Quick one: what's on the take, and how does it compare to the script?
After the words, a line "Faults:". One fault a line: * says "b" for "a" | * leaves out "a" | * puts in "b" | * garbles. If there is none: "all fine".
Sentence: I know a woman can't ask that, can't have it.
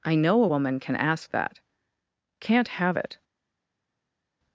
I know a woman can ask that, can't have it.
Faults:
* says "can" for "can't"